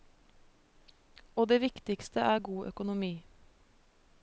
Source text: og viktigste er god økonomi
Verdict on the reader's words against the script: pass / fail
fail